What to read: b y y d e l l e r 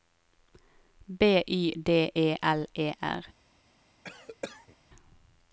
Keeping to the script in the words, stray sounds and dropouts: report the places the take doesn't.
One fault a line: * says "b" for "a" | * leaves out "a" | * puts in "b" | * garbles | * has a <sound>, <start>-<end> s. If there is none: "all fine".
* leaves out "y"
* leaves out "l"
* has a cough, 4.0-4.8 s